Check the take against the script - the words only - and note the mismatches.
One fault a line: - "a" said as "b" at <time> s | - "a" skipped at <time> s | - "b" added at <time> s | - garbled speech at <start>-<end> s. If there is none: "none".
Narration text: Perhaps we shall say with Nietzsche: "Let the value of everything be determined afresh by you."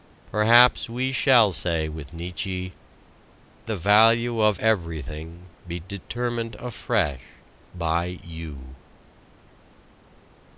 - "Let" skipped at 2.7 s